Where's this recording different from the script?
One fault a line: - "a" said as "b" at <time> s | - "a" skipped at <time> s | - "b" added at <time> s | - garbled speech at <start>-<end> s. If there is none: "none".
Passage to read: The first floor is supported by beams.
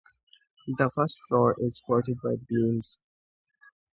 none